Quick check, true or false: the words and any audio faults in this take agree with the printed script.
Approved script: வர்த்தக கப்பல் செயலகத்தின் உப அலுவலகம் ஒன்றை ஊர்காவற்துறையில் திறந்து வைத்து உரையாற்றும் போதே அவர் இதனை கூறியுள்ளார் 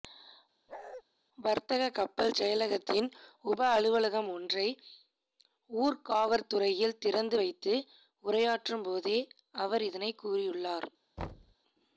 false